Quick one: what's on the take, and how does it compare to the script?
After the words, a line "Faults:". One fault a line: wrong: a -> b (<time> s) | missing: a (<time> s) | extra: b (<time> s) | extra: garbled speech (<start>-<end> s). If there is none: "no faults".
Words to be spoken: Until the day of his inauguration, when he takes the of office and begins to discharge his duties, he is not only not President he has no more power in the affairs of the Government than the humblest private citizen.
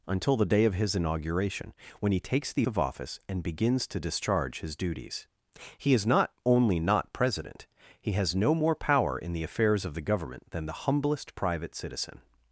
Until the day of his inauguration, when he takes the of office and begins to discharge his duties, he is not only not President he has no more power in the affairs of the Government than the humblest private citizen.
Faults:
no faults